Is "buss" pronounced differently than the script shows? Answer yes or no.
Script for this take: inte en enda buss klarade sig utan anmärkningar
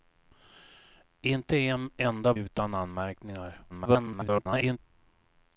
yes